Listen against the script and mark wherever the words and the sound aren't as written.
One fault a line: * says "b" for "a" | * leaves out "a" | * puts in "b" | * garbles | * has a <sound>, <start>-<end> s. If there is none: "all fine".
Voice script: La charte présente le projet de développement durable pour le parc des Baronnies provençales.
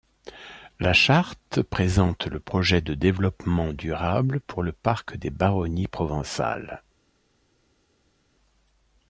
all fine